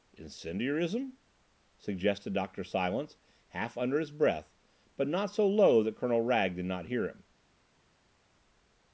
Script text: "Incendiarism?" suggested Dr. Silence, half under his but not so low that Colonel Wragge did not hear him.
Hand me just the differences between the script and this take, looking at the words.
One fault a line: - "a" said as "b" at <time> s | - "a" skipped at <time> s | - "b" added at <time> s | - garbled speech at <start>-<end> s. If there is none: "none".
- "breath" added at 4.1 s